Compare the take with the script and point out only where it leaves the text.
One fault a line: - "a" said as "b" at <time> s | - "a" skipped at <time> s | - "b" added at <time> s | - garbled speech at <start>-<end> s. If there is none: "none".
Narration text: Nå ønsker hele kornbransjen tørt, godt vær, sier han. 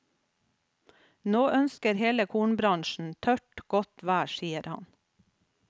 none